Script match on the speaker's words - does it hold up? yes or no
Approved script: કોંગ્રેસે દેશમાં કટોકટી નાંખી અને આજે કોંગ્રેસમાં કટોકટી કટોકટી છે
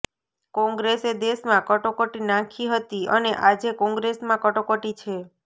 no